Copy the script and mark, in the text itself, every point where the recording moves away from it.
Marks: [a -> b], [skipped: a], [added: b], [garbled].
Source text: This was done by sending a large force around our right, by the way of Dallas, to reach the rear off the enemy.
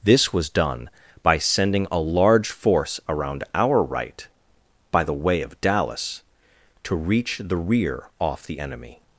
This was done by sending a large force around our right, by the way of Dallas, to reach the rear off the enemy.